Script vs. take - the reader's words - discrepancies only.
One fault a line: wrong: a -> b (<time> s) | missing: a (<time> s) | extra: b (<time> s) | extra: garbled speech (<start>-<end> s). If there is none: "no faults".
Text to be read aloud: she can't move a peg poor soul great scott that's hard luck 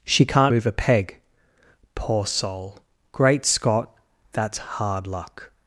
no faults